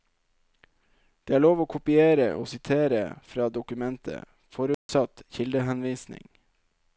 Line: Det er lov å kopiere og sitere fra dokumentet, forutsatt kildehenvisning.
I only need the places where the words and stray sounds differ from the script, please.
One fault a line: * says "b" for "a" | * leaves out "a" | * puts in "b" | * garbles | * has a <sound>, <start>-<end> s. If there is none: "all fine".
* has a dropout, 4.7-4.9 s